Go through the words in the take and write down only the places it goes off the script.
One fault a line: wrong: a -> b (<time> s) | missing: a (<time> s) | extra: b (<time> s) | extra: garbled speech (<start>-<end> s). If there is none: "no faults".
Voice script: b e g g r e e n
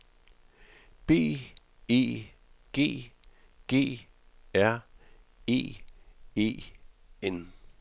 no faults